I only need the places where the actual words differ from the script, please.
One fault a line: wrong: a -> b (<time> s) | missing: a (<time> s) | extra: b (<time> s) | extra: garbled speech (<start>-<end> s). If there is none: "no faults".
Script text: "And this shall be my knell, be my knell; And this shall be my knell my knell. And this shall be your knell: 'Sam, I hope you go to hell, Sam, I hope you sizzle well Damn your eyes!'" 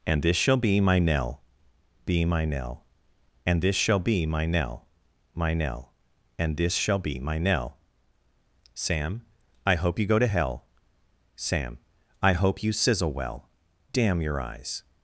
wrong: your -> my (7.2 s)